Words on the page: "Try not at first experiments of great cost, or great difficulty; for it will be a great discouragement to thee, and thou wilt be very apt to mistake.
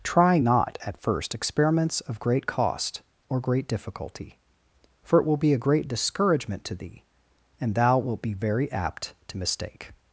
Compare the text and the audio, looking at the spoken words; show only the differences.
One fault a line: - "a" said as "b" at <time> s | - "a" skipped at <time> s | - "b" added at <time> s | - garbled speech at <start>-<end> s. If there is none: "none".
none